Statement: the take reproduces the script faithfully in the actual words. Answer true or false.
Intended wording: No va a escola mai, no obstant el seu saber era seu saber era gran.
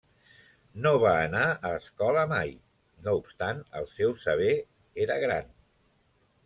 false